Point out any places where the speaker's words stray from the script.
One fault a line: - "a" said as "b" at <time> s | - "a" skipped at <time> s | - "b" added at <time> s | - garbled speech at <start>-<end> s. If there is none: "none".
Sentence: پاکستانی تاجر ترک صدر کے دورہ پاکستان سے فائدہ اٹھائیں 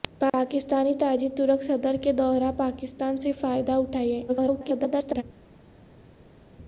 - garbled speech at 4.3-5.2 s